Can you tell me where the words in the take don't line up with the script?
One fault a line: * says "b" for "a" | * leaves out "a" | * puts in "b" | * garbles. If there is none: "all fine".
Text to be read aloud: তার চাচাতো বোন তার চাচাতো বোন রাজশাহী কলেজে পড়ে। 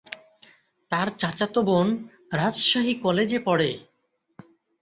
* leaves out "তার চাচাতো বোন"